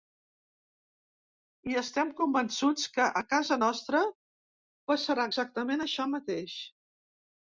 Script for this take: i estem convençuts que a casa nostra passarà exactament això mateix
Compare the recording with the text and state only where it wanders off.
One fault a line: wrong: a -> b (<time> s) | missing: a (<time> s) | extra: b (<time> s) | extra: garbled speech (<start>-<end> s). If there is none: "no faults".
no faults